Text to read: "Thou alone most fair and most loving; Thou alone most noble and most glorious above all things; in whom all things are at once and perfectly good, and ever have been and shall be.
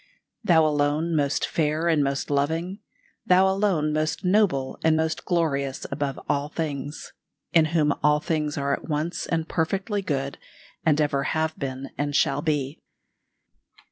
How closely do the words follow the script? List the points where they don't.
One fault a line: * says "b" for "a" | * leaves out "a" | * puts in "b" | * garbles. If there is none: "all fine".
all fine